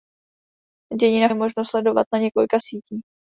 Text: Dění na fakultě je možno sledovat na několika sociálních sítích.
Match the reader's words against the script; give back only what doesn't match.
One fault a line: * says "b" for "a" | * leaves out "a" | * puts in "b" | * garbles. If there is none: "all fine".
* leaves out "fakultě"
* leaves out "sociálních"